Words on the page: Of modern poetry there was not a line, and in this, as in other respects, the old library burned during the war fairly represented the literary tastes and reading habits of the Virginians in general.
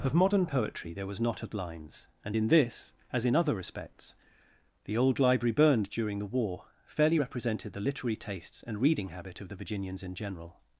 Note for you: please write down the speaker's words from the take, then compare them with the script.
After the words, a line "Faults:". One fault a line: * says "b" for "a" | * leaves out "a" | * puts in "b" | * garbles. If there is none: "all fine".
Of modern poetry there was not a lines, and in this, as in other respects, the old library burned during the war fairly represented the literary tastes and reading habit of the Virginians in general.
Faults:
* says "lines" for "line"
* says "habit" for "habits"